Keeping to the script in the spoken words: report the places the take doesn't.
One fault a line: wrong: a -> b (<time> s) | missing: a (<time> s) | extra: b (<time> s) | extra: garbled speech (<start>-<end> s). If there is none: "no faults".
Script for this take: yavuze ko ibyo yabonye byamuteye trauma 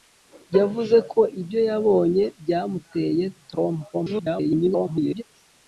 extra: garbled speech (3.9-5.2 s)